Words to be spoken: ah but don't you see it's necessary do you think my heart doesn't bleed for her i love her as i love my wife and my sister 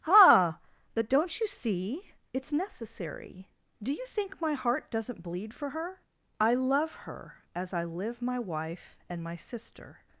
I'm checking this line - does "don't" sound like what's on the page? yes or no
yes